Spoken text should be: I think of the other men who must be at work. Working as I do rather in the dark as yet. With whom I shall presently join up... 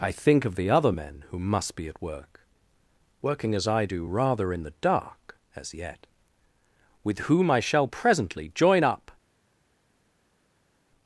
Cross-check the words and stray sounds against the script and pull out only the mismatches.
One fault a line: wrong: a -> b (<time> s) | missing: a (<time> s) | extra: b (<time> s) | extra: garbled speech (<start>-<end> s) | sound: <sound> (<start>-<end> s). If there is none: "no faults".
no faults